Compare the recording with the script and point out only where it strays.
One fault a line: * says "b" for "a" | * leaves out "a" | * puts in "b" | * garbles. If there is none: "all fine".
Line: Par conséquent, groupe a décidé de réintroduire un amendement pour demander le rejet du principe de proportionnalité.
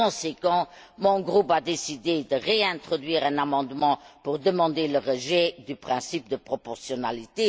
* puts in "mon"